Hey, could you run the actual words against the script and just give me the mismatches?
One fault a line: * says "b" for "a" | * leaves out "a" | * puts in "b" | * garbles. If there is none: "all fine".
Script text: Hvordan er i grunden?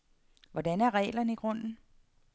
* puts in "reglerne"